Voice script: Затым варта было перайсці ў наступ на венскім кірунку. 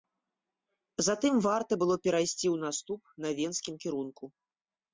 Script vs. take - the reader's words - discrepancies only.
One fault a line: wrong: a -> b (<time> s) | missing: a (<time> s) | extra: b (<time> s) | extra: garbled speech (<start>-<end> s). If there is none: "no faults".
no faults